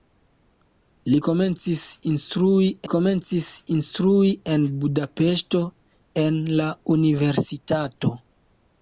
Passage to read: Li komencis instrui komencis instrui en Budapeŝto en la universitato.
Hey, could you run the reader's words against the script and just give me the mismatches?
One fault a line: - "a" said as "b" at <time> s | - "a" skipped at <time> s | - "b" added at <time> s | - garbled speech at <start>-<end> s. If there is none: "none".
none